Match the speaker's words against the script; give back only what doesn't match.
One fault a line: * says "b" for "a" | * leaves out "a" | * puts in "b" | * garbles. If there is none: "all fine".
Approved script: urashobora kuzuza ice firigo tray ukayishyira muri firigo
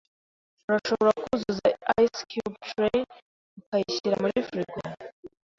* says "cube" for "firigo"